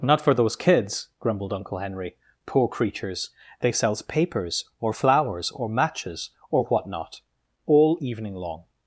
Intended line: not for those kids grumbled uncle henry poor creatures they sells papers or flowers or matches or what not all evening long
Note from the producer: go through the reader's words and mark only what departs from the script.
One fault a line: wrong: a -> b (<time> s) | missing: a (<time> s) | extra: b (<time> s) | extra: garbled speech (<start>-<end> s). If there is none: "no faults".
no faults